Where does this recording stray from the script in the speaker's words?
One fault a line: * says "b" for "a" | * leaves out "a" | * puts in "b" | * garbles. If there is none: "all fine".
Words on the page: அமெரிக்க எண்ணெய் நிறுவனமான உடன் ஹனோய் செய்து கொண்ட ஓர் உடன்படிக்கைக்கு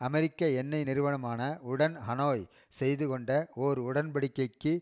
all fine